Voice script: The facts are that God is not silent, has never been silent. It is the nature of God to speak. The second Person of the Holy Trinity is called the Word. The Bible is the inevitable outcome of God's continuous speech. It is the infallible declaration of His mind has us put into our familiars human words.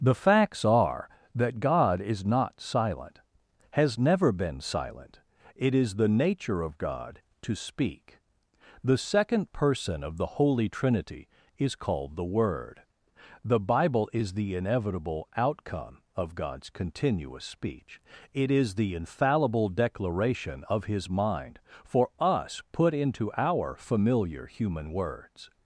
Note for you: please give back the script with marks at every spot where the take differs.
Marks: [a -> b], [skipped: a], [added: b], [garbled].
The facts are that God is not silent, has never been silent. It is the nature of God to speak. The second Person of the Holy Trinity is called the Word. The Bible is the inevitable outcome of God's continuous speech. It is the infallible declaration of His mind [has -> for] us put into our [familiars -> familiar] human words.